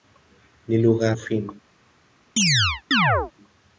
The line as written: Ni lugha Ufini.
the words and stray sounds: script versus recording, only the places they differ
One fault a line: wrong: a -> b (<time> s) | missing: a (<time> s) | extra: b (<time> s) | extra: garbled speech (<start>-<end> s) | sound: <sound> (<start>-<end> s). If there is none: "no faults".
sound: chirp (2.4-3.3 s)